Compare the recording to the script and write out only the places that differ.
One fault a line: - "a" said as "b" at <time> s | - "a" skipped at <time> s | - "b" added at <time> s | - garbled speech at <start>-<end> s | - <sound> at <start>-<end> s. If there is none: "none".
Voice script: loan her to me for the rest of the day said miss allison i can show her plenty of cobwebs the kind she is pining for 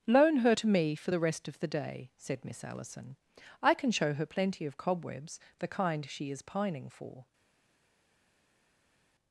none